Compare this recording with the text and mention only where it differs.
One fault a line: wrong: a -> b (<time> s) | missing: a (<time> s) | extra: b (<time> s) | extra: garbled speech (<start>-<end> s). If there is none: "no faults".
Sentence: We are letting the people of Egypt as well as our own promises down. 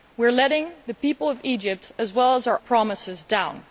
missing: own (2.6 s)